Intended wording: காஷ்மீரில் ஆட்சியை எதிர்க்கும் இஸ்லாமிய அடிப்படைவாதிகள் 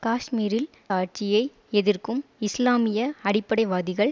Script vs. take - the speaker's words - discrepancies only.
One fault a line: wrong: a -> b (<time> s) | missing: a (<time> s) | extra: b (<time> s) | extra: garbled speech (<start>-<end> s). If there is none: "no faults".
no faults